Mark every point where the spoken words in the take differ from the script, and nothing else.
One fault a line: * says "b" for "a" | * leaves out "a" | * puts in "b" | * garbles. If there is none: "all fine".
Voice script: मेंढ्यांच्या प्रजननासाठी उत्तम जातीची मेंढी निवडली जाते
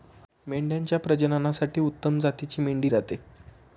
* leaves out "निवडली"